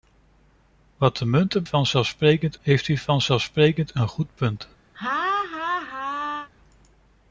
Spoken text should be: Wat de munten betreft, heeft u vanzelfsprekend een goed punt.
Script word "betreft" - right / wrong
wrong